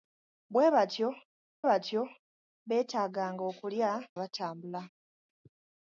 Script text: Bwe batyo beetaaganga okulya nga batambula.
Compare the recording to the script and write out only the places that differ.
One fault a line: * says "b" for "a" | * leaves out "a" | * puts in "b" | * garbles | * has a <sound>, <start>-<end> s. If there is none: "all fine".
* puts in "batyo"
* leaves out "nga"